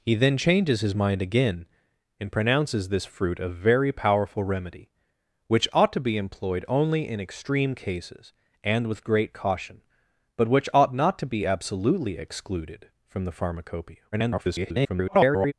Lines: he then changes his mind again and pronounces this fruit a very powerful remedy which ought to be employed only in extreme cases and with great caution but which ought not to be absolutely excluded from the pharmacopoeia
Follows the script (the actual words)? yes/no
no